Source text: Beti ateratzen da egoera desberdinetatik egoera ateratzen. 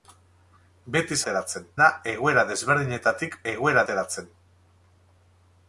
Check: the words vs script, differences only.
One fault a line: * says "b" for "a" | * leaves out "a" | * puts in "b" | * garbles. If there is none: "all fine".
all fine